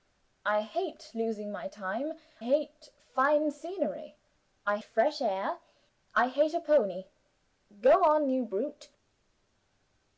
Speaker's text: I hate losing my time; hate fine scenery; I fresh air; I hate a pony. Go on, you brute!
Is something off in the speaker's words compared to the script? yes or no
no